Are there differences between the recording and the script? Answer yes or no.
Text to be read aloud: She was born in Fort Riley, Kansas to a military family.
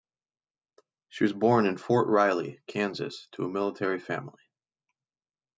no